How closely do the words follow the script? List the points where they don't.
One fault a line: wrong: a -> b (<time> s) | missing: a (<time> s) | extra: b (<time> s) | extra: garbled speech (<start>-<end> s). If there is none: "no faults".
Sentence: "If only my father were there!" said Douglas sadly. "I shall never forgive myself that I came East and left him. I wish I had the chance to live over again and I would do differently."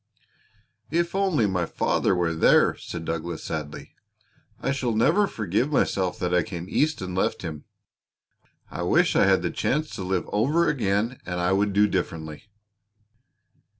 no faults